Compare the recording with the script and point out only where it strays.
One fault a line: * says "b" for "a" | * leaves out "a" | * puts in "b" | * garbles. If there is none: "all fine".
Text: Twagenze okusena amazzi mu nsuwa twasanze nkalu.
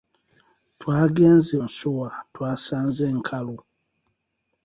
* leaves out "okusena amazzi mu"